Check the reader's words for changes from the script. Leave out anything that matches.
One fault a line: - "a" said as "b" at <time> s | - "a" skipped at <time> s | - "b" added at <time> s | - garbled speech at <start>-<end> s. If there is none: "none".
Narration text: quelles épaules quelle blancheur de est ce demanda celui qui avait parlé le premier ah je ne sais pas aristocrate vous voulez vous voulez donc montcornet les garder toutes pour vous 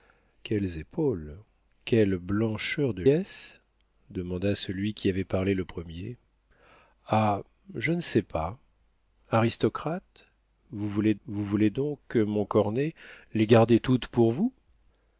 none